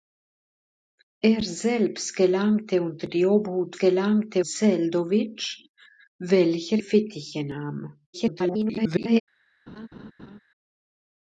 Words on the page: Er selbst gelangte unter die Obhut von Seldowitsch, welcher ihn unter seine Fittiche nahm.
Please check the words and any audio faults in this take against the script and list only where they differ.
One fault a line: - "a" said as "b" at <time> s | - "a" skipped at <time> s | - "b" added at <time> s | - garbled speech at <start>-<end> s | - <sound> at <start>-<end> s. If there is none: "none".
- "von" said as "gelangte" at 3.8 s
- "ihn unter seine" skipped at 6.8 s
- garbled speech at 8.1-9.2 s
- laugh at 9.7-10.4 s